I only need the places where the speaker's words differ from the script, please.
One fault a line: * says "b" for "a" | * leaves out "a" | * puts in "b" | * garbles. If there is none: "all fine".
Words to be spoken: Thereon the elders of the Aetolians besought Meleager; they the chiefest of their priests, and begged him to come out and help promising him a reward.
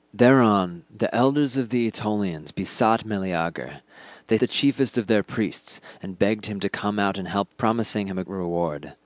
all fine